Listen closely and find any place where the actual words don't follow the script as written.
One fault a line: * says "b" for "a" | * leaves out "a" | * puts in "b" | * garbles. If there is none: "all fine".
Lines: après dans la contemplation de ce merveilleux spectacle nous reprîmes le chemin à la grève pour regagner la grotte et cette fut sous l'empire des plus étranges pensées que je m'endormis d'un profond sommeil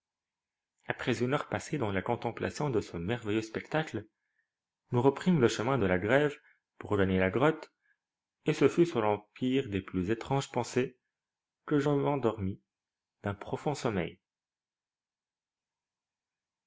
* puts in "une heure passée"
* says "de" for "à"
* says "ce" for "cette"